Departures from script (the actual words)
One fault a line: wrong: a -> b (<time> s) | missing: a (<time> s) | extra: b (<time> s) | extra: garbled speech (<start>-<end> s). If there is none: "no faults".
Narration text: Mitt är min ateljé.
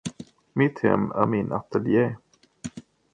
extra: hem (0.8 s)